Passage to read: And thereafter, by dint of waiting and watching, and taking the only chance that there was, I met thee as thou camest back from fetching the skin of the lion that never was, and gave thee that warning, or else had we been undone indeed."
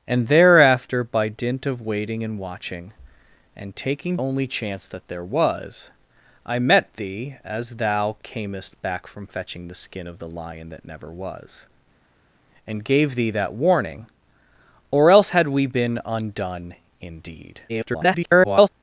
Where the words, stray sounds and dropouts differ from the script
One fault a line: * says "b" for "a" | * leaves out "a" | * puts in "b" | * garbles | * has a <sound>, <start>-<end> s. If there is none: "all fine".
* leaves out "the"
* garbles